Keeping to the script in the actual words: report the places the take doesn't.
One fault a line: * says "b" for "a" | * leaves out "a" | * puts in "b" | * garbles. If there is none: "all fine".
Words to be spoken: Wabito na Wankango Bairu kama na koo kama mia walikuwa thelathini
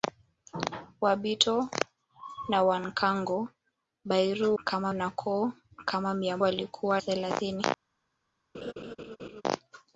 all fine